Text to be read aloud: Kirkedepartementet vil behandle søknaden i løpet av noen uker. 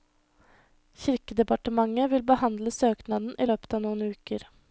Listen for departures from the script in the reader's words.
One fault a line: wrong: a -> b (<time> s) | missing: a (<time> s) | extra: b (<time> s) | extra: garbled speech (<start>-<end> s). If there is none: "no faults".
no faults